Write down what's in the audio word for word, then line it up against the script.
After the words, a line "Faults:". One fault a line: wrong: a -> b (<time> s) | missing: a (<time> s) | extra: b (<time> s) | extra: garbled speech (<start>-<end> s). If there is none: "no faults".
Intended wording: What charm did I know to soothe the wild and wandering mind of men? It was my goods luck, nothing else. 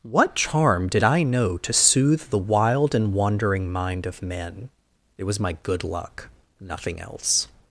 What charm did I know to soothe the wild and wandering mind of men? It was my good luck, nothing else.
Faults:
wrong: goods -> good (5.6 s)